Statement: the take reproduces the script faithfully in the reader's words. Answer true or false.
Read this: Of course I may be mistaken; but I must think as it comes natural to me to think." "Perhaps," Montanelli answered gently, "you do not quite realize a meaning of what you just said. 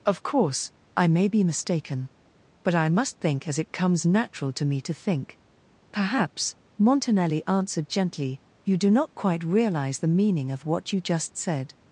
false